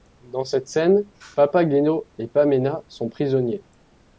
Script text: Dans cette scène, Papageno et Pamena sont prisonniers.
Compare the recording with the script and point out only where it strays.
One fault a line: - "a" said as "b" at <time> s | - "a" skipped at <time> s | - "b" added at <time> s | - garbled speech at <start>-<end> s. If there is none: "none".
none